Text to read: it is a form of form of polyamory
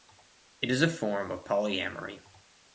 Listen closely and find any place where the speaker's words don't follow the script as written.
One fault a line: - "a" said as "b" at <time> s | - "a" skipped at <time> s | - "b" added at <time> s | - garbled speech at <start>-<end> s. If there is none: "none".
- "form of" skipped at 1.4 s